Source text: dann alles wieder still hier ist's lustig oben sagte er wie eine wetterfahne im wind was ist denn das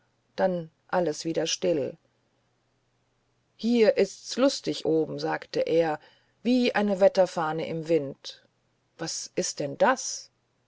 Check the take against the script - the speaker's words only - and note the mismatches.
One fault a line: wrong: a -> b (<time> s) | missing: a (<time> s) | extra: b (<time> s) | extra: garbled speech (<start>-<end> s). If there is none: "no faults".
no faults